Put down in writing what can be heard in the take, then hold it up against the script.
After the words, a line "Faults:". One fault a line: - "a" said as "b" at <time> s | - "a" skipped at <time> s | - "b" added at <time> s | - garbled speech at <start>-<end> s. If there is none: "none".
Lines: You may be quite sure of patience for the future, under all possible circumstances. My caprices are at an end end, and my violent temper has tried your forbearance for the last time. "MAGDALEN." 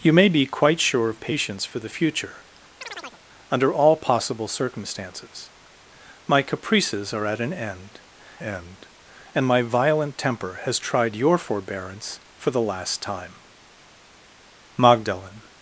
You may be quite sure of patience for the future, under all possible circumstances. My caprices are at an end end, and my violent temper has tried your forbearance for the last time. "MAGDALEN."
Faults:
none